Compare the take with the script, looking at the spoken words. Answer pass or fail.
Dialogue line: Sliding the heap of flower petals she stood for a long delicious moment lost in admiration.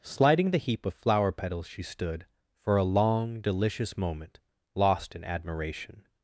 pass